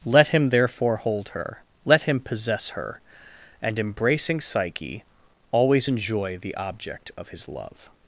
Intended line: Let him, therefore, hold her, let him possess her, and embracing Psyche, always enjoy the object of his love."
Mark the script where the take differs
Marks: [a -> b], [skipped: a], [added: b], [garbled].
Let him, therefore, hold her, let him possess her, and embracing Psyche, always enjoy the object of his love."